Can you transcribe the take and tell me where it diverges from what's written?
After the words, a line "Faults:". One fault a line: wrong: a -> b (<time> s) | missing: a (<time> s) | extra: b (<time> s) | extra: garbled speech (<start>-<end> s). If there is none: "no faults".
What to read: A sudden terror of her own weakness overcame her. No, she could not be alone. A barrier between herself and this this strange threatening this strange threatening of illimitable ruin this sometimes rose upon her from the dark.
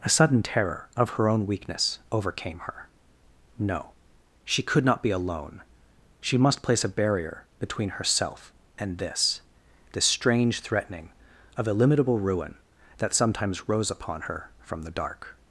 A sudden terror of her own weakness overcame her. No, she could not be alone. She must place a barrier between herself and this this strange threatening of illimitable ruin that sometimes rose upon her from the dark.
Faults:
extra: She must place (6.2 s)
missing: this strange threatening (11.1 s)
wrong: this -> that (13.0 s)